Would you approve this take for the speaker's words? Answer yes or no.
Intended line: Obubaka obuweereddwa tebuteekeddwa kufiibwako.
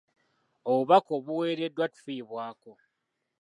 no